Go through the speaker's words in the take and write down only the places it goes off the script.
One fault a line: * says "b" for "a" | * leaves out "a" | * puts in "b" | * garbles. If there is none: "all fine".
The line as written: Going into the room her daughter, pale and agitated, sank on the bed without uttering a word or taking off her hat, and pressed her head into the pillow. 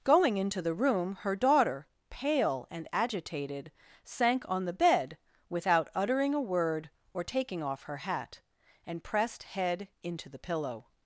* leaves out "her"